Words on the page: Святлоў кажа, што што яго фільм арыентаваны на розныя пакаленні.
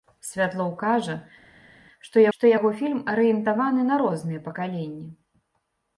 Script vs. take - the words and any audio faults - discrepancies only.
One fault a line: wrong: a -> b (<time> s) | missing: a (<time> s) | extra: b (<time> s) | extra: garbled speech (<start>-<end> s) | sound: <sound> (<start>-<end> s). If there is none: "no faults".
no faults